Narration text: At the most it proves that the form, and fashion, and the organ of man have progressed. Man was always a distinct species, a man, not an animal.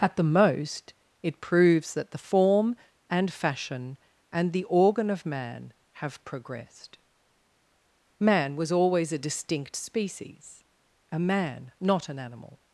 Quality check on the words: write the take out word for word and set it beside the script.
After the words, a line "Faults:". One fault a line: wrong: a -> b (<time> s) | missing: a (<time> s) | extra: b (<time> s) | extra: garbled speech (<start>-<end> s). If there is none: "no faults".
At the most it proves that the form, and fashion, and the organ of man have progressed. Man was always a distinct species, a man, not an animal.
Faults:
no faults